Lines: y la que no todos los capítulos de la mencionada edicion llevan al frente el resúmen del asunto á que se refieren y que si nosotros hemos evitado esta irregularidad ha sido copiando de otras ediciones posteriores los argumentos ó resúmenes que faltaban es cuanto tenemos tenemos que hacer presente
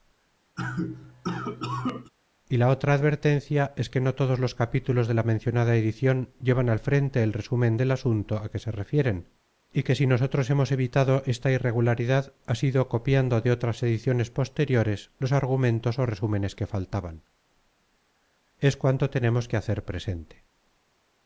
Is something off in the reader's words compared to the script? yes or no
yes